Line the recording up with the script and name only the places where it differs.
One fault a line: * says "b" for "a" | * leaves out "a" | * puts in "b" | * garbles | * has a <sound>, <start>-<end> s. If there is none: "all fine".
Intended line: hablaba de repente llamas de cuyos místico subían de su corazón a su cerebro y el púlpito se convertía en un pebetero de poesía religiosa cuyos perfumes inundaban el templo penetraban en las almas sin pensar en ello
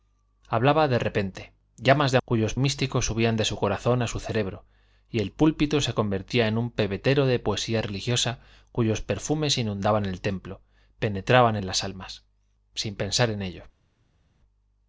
all fine